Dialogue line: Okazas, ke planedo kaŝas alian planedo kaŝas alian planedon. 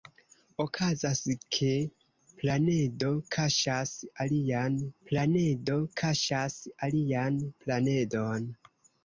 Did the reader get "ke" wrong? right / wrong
right